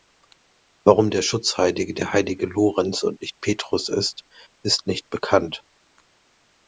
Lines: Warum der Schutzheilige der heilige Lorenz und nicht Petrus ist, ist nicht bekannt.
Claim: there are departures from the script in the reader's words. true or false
false